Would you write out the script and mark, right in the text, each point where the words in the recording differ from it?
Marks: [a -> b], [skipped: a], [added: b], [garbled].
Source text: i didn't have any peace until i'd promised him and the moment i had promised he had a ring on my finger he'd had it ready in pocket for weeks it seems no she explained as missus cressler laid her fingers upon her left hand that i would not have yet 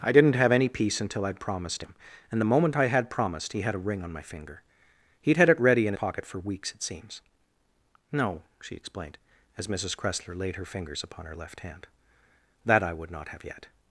i didn't have any peace until i'd promised him and the moment i had promised he had a ring on my finger he'd had it ready in pocket for weeks it seems no she explained as missus cressler laid her fingers upon her left hand that i would not have yet